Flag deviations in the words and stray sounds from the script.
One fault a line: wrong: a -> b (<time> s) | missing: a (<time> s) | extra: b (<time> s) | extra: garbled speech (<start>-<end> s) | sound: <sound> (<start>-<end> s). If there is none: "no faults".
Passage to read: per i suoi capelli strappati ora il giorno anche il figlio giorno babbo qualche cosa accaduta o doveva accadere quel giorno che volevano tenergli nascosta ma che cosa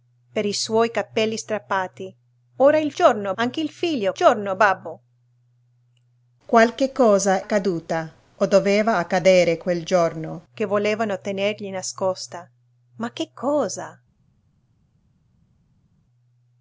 no faults